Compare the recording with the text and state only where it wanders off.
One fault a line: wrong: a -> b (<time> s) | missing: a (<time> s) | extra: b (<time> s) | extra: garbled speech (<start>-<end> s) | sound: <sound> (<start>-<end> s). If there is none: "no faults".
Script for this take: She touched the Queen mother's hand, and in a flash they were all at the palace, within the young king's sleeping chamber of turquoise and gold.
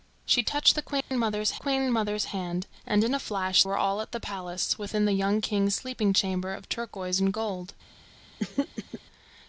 sound: dropout (1.0-1.1 s)
extra: Queen mother's (1.5 s)
missing: they (3.6 s)
sound: throat clearing (8.4-9.0 s)